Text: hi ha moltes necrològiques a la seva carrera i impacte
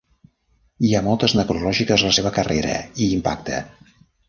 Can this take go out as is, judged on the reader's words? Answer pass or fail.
pass